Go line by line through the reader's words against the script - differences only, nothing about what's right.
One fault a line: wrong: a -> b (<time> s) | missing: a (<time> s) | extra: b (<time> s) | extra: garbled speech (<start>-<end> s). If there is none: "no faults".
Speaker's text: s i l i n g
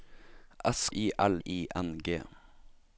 no faults